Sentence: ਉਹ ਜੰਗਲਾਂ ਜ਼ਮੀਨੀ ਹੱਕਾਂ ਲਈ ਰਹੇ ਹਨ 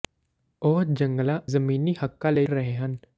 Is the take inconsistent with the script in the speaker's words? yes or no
no